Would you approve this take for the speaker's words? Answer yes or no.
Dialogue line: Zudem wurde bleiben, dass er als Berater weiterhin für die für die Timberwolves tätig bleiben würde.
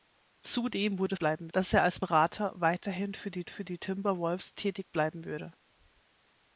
yes